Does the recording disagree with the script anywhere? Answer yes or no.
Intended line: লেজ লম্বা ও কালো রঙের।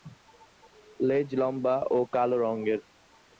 no